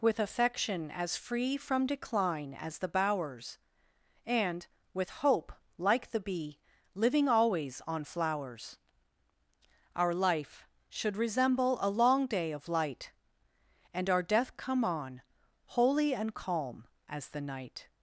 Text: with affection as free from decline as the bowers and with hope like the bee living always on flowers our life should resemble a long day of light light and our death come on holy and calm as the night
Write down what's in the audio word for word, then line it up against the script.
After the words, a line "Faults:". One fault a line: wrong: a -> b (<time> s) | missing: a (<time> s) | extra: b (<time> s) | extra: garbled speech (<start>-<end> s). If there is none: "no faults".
with affection as free from decline as the bowers and with hope like the bee living always on flowers our life should resemble a long day of light and our death come on holy and calm as the night
Faults:
missing: light (13.1 s)